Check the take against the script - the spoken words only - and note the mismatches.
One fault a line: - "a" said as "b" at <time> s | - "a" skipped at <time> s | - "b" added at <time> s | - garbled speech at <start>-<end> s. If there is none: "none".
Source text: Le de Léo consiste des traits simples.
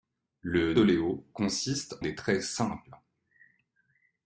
none